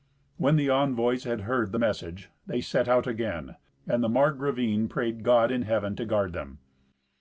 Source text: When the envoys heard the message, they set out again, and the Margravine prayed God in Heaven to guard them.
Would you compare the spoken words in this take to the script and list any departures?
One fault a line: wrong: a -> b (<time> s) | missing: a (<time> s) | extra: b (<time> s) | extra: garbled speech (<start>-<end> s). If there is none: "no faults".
extra: had (1.2 s)